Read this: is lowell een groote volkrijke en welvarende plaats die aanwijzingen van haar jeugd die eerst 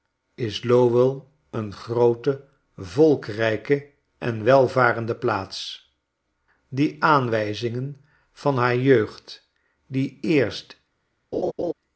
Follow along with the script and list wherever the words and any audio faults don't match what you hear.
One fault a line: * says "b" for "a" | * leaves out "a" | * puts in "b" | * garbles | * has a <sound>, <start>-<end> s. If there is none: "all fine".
* has a laugh, 11.3-11.7 s